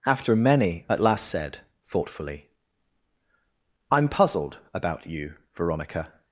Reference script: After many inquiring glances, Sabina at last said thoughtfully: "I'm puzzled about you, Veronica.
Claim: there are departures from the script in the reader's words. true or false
true